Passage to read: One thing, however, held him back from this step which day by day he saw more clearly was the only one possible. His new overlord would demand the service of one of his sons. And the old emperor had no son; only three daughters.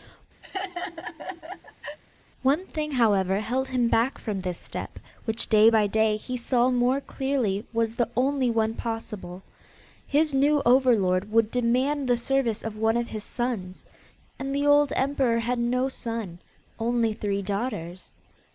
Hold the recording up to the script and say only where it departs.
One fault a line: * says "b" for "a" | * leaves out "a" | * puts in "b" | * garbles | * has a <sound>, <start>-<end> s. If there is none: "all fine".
* has a laugh, 0.4-2.0 s